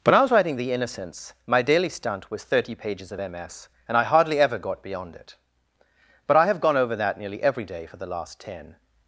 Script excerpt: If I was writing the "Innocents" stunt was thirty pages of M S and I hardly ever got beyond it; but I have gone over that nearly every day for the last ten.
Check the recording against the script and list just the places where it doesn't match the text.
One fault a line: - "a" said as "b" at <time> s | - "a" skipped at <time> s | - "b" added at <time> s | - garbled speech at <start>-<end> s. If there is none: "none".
- "If" said as "When" at 0.0 s
- "my daily" added at 1.4 s